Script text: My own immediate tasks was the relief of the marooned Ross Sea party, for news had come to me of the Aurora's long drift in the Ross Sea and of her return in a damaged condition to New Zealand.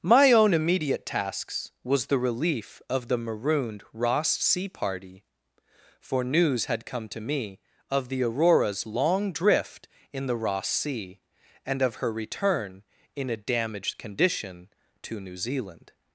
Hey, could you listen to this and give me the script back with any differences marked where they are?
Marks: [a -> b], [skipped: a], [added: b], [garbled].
My own immediate tasks was the relief of the marooned Ross Sea party, for news had come to me of the Aurora's long drift in the Ross Sea and of her return in a damaged condition to New Zealand.